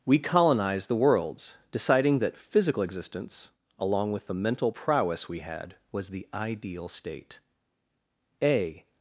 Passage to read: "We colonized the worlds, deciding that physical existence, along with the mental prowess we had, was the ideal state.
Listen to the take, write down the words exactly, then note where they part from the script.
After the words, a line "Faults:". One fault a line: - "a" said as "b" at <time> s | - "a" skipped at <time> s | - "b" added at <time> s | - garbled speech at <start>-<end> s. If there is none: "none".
"We colonized the worlds, deciding that physical existence, along with the mental prowess we had, was the ideal state. A
Faults:
- "A" added at 8.4 s